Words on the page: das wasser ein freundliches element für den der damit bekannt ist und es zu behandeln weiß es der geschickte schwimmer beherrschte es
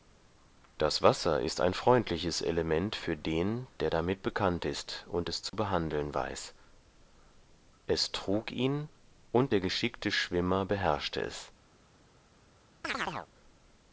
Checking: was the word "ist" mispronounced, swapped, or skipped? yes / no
no